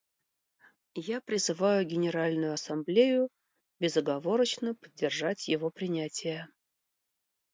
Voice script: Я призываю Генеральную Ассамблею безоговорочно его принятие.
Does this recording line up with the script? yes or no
no